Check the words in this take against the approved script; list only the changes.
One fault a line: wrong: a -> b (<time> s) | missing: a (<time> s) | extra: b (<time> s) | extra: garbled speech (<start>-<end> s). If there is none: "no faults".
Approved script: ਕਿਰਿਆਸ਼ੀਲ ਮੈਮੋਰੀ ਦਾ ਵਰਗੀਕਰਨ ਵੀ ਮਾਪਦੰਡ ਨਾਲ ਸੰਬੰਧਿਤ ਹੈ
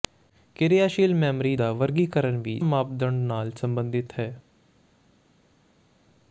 no faults